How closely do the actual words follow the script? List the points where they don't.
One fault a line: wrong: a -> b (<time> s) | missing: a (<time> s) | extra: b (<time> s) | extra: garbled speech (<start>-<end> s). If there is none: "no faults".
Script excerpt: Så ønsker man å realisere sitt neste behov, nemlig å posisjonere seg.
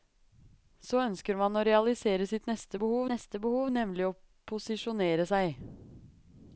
extra: neste behov (3.1 s)